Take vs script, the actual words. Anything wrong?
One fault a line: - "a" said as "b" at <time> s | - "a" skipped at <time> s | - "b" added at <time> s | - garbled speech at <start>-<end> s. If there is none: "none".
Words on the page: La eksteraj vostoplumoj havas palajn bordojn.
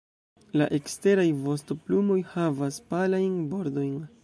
none